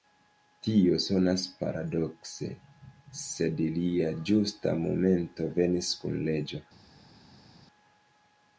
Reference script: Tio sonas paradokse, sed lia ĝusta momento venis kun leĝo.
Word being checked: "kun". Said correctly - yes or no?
yes